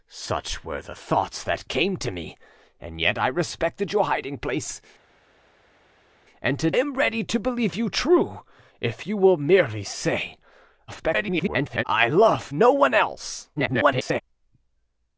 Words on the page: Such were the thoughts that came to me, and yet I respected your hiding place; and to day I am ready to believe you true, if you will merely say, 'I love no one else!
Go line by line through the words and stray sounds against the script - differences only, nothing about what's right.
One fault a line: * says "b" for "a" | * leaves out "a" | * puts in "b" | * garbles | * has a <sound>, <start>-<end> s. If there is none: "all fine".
* leaves out "day I"
* garbles
* garbles